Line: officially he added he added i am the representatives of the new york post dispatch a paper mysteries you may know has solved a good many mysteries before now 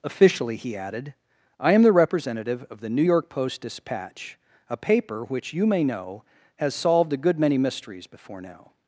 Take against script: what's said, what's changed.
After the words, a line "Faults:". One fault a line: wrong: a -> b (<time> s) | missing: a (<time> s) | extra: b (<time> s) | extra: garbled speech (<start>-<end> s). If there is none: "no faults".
officially he added i am the representative of the new york post dispatch a paper which you may know has solved a good many mysteries before now
Faults:
missing: he added (1.1 s)
wrong: representatives -> representative (1.9 s)
wrong: mysteries -> which (5.2 s)